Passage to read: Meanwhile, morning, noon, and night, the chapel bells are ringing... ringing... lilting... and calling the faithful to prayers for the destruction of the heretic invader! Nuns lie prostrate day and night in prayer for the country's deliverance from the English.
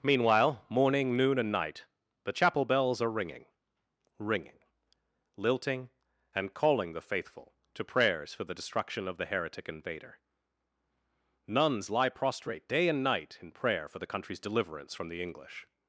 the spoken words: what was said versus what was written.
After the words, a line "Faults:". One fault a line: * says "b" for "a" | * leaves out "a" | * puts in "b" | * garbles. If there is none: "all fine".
Meanwhile, morning, noon, and night, the chapel bells are ringing... ringing... lilting... and calling the faithful to prayers for the destruction of the heretic invader! Nuns lie prostrate day and night in prayer for the country's deliverance from the English.
Faults:
all fine